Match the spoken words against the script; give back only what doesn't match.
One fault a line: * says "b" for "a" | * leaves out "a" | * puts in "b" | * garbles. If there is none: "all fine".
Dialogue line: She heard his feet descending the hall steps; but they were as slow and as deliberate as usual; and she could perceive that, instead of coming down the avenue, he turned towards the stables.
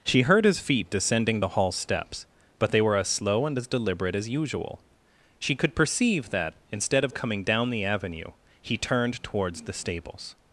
* leaves out "and"